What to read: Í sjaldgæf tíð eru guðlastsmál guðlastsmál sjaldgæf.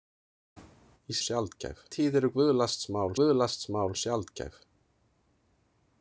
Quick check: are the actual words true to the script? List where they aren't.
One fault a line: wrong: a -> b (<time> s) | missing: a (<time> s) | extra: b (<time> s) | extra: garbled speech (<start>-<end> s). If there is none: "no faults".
no faults